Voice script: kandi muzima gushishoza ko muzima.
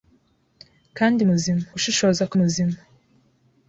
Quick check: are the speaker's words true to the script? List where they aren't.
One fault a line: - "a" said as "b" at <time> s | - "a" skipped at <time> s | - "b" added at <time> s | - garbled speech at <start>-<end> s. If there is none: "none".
none